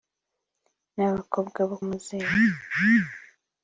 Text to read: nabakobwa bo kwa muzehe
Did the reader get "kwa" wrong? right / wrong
wrong